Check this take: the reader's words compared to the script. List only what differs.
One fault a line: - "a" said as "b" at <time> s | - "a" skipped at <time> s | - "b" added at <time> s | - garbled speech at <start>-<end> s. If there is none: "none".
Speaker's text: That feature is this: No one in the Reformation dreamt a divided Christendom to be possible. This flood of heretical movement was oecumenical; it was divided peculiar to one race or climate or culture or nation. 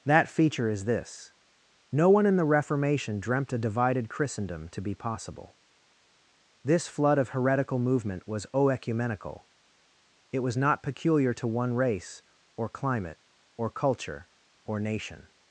- "divided" said as "not" at 10.6 s